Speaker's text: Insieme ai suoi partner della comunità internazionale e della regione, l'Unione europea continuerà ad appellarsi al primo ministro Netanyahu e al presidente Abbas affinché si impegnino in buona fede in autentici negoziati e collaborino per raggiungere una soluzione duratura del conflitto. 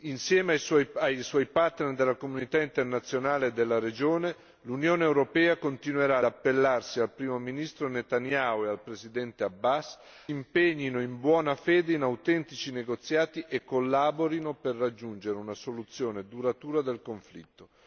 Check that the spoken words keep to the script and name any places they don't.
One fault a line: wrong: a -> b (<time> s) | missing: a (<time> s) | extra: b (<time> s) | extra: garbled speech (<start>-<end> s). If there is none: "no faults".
missing: ad (6.2 s)
missing: affinché si (10.0 s)